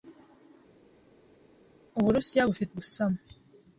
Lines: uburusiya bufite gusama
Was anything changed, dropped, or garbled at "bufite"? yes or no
no